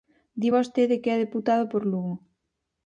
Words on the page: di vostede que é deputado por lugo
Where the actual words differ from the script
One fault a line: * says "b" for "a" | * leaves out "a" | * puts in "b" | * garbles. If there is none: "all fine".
all fine